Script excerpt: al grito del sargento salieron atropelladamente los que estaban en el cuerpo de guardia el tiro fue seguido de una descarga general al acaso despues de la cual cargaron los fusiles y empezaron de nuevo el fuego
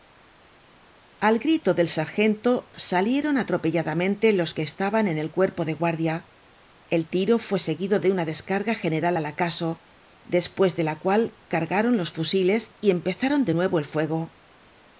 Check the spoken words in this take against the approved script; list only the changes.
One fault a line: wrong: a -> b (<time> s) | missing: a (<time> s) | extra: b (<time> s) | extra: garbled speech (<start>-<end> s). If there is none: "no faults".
no faults